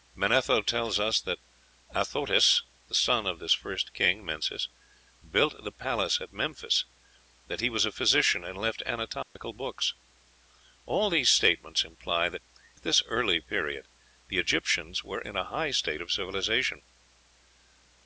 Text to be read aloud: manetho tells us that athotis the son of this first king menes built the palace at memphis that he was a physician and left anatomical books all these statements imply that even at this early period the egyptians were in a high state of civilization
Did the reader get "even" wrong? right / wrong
wrong